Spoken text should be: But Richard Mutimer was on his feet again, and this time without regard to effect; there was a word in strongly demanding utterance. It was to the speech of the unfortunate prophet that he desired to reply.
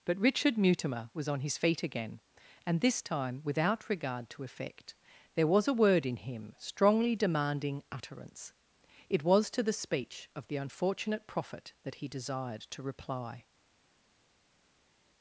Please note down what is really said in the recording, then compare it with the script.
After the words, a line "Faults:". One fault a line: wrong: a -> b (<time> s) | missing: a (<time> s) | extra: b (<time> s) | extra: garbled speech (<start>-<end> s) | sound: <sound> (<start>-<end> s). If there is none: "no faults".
But Richard Mutimer was on his feet again, and this time without regard to effect; there was a word in him strongly demanding utterance. It was to the speech of the unfortunate prophet that he desired to reply.
Faults:
extra: him (6.2 s)